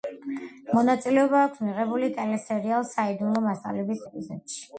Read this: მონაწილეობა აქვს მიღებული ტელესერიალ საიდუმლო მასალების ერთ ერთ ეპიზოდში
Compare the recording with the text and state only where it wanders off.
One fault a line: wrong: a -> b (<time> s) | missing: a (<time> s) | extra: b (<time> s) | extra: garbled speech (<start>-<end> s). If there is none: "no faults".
missing: ერთ ერთ (4.0 s)